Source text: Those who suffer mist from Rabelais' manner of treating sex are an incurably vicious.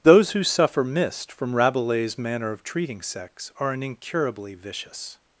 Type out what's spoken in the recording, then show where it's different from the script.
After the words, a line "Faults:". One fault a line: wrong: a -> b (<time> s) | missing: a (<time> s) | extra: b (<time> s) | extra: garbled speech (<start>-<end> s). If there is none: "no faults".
Those who suffer mist from Rabelais' manner of treating sex are an incurably vicious.
Faults:
no faults